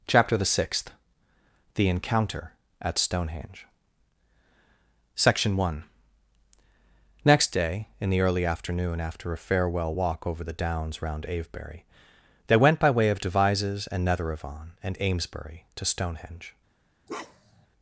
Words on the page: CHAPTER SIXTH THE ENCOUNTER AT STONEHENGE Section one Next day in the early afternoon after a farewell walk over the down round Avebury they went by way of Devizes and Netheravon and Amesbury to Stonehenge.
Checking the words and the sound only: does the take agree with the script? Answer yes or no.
no